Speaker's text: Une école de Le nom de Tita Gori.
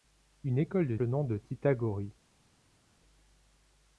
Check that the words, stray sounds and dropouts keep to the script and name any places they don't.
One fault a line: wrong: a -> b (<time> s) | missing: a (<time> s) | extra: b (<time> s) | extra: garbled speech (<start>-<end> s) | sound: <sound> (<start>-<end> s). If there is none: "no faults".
no faults